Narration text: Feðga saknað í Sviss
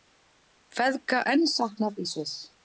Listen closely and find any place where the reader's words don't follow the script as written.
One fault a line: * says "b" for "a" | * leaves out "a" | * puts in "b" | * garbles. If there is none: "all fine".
* puts in "enn"